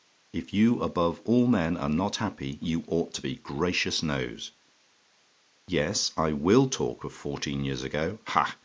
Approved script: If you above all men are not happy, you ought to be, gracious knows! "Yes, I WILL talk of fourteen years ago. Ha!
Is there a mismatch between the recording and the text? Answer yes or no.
no